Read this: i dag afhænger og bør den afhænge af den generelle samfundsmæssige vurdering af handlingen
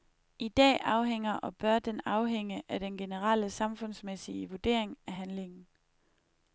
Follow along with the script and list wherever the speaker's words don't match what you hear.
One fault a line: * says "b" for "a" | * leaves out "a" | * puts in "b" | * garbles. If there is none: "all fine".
all fine